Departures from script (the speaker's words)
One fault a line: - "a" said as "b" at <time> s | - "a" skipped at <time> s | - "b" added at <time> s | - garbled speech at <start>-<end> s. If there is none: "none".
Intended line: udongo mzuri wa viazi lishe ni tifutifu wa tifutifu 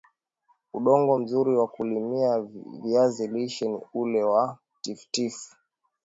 - "kulimia" added at 1.7 s
- "tifutifu" said as "ule" at 3.9 s